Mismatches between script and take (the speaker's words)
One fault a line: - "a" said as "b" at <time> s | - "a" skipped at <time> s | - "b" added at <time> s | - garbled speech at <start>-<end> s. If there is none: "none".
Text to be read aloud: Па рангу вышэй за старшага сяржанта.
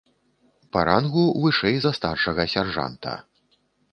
none